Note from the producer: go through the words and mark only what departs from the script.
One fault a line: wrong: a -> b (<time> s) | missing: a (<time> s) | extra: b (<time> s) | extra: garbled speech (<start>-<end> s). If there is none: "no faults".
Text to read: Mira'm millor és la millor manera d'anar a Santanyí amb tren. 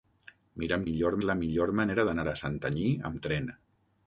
no faults